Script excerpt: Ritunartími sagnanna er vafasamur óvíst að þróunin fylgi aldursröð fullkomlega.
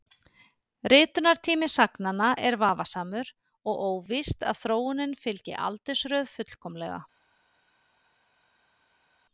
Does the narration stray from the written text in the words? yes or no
yes